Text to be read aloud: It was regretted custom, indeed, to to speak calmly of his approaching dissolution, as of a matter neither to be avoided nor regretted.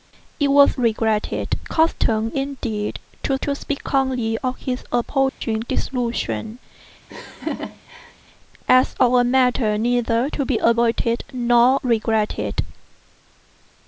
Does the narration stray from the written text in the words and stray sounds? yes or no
yes